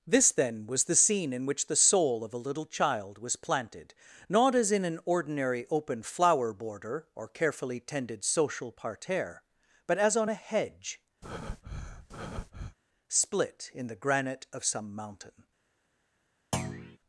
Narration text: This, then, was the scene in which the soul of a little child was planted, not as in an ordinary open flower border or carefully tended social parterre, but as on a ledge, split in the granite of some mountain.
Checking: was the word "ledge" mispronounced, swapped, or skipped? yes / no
yes